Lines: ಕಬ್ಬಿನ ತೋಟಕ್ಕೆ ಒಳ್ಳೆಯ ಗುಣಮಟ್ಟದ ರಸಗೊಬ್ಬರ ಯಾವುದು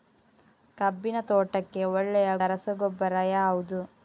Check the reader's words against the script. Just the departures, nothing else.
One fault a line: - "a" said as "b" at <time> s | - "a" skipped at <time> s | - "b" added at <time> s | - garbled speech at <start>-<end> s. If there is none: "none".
- "ಗುಣಮಟ್ಟದ" skipped at 2.3 s